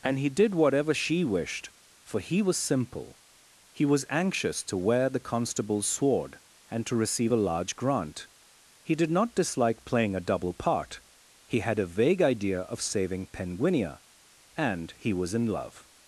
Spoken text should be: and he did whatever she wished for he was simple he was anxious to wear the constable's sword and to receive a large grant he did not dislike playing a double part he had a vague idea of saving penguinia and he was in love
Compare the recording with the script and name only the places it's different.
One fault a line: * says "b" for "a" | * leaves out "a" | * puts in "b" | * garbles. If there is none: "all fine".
all fine